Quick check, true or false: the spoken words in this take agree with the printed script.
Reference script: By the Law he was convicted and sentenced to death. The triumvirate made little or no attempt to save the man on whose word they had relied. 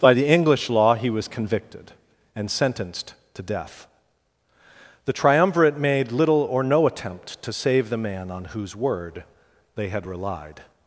false